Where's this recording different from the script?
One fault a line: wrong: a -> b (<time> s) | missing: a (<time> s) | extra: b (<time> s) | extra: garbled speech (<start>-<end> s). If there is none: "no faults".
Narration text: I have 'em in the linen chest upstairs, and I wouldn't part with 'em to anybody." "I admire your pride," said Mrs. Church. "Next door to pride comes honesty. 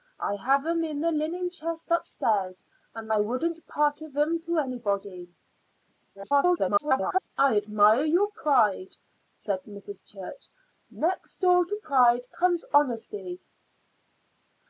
extra: garbled speech (6.1-7.3 s)